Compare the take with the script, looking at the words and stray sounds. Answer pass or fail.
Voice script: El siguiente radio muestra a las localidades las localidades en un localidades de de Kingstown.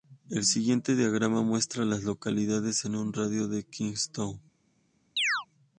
fail